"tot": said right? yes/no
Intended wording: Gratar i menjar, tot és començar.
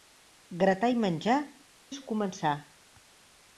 no